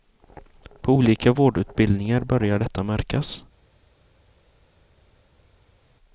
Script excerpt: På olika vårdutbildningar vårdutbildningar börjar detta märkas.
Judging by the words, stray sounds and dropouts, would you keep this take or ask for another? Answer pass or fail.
fail